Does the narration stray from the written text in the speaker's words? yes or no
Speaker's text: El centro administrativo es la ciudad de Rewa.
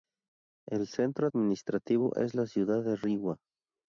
no